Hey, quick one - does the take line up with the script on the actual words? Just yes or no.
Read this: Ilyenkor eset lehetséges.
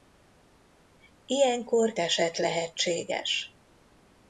yes